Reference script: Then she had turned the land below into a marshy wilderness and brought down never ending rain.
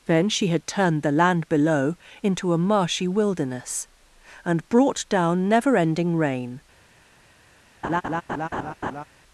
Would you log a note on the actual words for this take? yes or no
no